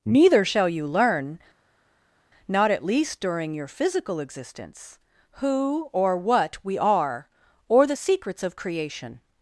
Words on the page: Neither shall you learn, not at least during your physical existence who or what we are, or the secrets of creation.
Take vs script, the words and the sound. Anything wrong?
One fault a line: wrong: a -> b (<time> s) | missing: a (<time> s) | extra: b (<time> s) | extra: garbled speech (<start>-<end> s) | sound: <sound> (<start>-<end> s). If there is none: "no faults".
no faults